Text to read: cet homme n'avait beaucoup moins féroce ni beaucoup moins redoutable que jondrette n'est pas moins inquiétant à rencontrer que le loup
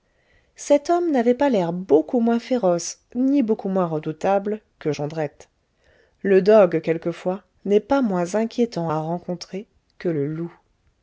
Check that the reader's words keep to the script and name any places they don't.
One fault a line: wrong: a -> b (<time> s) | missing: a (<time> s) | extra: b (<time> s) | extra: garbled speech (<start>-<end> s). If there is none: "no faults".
extra: pas l'air (1.4 s)
extra: le dogue quelquefois (6.2 s)